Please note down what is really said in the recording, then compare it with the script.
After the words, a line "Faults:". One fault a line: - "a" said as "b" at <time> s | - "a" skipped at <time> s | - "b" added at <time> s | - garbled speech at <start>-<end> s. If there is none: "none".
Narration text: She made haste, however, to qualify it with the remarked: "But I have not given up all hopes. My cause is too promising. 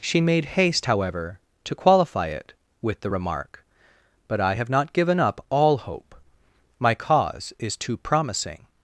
She made haste, however, to qualify it with the remark: "But I have not given up all hope. My cause is too promising.
Faults:
- "remarked" said as "remark" at 3.1 s
- "hopes" said as "hope" at 5.8 s